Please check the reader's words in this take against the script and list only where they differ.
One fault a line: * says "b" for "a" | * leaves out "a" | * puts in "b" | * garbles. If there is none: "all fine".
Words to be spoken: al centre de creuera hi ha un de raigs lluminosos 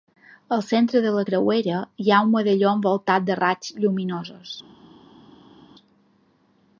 * puts in "la"
* puts in "medalló envoltat"